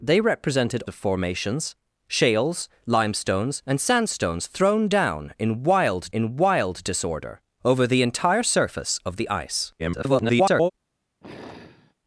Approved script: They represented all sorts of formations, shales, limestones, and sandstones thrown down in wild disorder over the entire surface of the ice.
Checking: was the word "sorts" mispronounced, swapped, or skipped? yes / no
yes